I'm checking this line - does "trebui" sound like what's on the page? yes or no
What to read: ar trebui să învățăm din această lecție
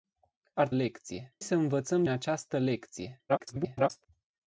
no